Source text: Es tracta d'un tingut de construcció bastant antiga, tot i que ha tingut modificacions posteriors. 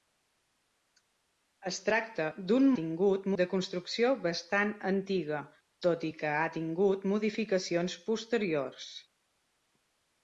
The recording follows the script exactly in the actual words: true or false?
true